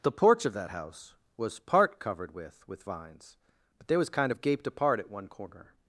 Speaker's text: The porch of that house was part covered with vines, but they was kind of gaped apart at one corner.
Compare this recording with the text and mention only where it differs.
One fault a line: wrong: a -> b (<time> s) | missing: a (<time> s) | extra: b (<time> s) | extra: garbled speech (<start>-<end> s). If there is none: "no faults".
extra: with (2.7 s)